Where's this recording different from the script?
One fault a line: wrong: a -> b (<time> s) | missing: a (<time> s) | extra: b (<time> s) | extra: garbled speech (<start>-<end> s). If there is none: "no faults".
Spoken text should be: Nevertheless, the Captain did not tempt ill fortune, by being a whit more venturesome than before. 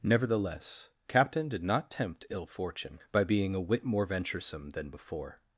missing: the (0.9 s)